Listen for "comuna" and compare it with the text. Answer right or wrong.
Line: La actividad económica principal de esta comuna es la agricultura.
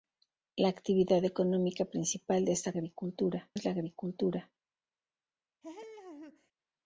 wrong